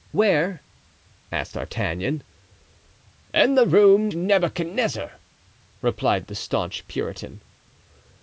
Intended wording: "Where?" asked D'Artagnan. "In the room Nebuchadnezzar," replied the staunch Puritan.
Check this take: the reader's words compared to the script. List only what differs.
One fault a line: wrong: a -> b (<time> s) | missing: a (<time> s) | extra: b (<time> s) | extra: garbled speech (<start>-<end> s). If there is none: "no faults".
no faults